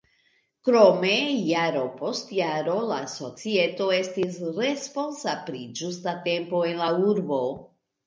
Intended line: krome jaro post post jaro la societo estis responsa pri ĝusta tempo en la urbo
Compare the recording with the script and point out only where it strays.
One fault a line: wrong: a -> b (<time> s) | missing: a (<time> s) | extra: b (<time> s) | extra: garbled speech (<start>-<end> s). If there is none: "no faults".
missing: post (2.3 s)